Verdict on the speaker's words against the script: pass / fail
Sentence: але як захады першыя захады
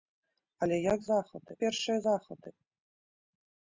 pass